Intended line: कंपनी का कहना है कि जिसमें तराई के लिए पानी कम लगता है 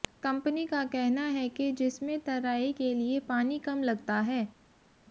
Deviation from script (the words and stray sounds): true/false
false